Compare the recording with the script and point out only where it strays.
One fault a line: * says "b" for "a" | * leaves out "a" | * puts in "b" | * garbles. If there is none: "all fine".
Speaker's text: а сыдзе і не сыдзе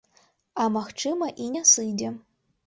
* says "магчыма" for "сыдзе"